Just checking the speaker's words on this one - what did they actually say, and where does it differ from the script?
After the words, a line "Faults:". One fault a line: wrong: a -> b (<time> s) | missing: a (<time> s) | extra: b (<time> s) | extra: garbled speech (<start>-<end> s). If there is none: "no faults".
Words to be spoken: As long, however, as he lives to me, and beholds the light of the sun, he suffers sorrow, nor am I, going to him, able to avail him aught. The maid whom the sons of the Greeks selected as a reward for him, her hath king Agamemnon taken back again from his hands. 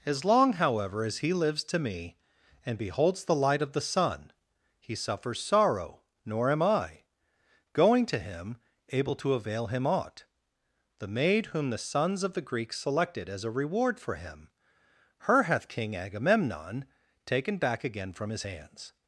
As long, however, as he lives to me, and beholds the light of the sun, he suffers sorrow, nor am I, going to him, able to avail him aught. The maid whom the sons of the Greeks selected as a reward for him, her hath king Agamemnon taken back again from his hands.
Faults:
no faults